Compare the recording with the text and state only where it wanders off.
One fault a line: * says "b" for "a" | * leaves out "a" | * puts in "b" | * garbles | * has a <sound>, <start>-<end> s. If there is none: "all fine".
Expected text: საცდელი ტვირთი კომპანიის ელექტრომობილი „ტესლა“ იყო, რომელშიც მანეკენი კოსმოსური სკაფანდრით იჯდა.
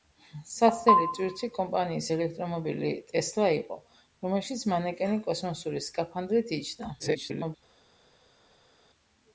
* garbles